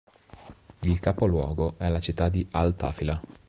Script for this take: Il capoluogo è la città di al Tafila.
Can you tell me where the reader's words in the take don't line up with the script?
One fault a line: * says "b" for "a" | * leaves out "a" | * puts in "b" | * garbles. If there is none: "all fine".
all fine